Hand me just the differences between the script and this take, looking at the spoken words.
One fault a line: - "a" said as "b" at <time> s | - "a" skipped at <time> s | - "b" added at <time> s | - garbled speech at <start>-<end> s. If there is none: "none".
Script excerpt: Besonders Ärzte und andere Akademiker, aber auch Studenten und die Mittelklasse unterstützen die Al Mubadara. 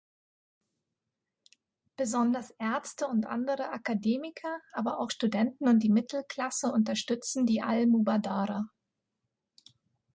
none